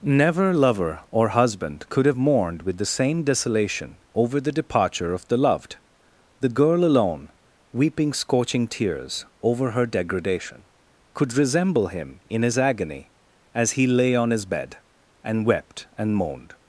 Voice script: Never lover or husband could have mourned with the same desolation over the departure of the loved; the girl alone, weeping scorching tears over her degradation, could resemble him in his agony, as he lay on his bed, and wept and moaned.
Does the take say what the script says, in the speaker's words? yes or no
yes